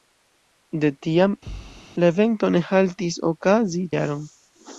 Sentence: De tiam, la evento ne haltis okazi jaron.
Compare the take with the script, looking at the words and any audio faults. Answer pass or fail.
fail